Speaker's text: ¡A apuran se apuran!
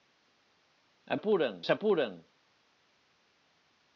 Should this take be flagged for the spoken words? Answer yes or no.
no